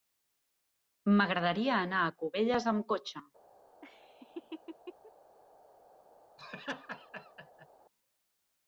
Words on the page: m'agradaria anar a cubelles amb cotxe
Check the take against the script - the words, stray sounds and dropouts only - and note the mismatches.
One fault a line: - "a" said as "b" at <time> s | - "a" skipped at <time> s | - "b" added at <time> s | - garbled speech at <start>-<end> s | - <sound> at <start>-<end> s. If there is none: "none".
- laugh at 3.8-5.1 s
- laugh at 6.4-7.7 s